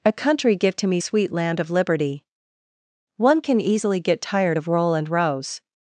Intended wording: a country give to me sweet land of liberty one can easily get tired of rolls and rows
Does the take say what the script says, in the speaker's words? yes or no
no